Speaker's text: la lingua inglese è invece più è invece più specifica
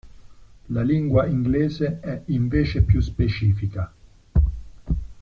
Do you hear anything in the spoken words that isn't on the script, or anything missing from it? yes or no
yes